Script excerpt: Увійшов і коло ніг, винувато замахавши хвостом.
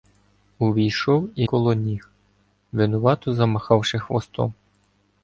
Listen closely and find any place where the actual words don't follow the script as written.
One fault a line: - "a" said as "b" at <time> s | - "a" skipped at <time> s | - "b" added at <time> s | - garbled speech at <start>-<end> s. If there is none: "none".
none